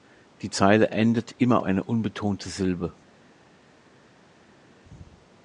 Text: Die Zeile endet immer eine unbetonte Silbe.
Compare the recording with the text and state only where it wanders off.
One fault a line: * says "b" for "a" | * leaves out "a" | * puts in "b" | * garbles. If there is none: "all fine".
all fine